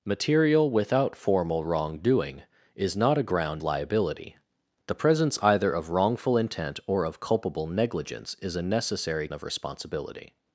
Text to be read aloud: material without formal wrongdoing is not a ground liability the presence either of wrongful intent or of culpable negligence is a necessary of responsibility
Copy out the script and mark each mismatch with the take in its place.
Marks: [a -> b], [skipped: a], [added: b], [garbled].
material without formal wrongdoing is not a ground liability the presence either of wrongful intent or of culpable negligence is a necessary of responsibility